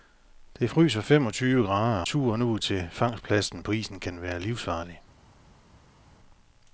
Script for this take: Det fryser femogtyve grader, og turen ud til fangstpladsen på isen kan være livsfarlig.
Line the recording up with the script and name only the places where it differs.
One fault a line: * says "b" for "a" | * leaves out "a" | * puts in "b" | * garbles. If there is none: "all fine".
* leaves out "og"